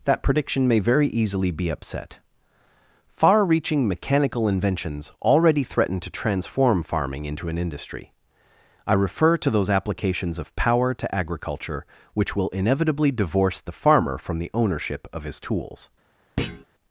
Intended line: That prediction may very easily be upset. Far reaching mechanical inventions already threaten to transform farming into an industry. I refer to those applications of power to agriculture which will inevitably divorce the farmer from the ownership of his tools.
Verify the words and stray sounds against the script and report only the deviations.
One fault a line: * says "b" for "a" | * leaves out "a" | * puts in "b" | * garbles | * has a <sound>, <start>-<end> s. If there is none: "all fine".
* has a thud, 16.4-16.6 s